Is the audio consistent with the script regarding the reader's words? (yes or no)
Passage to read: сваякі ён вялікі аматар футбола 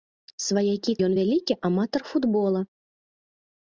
yes